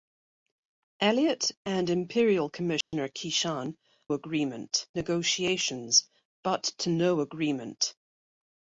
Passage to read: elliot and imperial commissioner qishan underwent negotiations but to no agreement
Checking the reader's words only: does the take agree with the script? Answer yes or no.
no